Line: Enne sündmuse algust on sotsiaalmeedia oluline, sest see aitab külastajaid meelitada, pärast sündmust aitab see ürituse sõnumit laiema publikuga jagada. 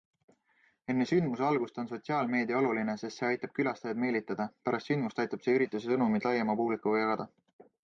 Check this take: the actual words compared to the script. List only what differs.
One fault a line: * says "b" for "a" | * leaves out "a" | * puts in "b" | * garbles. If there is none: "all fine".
all fine